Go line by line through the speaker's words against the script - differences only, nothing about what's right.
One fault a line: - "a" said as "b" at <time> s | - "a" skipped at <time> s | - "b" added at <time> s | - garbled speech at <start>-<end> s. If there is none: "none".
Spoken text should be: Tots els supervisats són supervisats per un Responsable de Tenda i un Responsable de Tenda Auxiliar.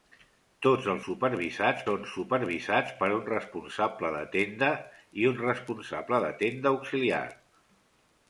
none